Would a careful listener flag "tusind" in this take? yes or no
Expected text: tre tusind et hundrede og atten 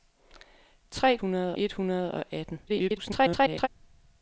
yes